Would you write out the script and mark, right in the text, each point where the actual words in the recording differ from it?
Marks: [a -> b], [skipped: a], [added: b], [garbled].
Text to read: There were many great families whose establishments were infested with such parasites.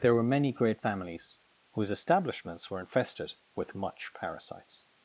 There were many great families whose establishments were infested with [such -> much] parasites.